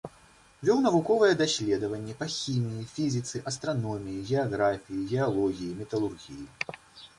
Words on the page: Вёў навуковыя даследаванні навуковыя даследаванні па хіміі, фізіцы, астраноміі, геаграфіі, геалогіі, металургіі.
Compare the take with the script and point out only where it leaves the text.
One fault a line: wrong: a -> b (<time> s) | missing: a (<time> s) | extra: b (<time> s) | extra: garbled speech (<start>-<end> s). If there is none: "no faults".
missing: навуковыя даследаванні (2.1 s)